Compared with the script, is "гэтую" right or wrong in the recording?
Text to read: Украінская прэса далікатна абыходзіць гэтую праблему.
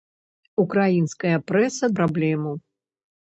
wrong